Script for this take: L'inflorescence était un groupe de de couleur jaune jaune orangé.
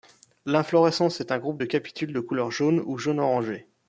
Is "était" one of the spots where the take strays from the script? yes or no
yes